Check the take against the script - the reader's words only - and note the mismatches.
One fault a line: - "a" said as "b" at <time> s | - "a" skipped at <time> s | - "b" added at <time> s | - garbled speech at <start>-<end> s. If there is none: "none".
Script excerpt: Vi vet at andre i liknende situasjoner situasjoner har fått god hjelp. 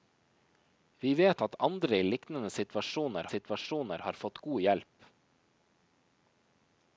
none